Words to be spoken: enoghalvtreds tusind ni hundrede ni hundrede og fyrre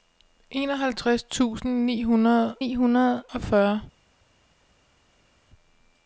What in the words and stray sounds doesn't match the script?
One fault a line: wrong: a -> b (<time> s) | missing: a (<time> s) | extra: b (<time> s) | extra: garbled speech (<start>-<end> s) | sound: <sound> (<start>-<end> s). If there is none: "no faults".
no faults